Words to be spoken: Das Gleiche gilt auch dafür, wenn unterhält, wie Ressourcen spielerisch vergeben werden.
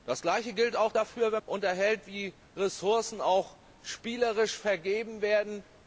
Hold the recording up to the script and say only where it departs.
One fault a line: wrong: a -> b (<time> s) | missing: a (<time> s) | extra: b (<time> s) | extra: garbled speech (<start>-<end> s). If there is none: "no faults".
no faults